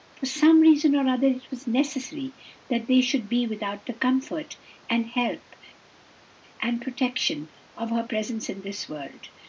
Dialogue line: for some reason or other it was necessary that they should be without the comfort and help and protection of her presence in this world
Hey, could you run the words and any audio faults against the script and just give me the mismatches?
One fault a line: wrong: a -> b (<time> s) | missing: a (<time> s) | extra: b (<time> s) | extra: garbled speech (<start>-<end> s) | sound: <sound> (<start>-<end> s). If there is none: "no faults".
no faults